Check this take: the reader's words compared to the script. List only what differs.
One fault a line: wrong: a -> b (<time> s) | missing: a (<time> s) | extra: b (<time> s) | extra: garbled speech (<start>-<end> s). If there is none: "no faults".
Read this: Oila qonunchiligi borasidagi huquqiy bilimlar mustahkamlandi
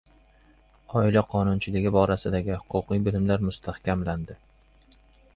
no faults